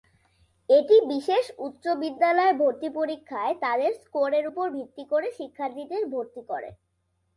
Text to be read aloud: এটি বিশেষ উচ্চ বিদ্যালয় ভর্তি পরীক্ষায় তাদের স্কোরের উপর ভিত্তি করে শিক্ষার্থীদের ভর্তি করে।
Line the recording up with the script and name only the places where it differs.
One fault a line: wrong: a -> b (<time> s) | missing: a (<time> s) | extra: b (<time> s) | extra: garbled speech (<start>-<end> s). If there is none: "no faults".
no faults